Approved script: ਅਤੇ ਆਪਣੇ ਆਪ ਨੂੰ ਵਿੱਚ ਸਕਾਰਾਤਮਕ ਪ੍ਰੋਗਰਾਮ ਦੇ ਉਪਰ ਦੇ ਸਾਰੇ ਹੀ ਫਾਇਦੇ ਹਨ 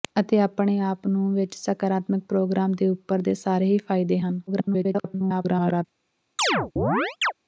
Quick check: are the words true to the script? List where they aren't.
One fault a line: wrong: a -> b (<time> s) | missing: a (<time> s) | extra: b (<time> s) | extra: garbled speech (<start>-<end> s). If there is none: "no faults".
extra: garbled speech (4.5-5.8 s)